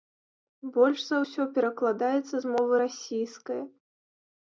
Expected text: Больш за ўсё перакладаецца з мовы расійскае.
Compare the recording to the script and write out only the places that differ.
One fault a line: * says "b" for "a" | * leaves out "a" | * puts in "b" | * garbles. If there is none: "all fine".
all fine